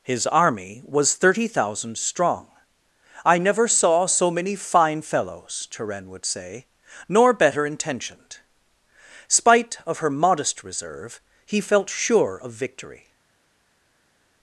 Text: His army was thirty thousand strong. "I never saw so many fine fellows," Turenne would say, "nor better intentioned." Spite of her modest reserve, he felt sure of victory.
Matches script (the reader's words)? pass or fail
pass